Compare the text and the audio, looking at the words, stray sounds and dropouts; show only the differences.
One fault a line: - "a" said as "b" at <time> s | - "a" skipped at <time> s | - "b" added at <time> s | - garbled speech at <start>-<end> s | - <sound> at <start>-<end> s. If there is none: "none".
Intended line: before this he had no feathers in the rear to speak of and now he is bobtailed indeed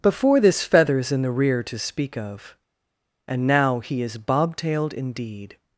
- "he had no" skipped at 0.6 s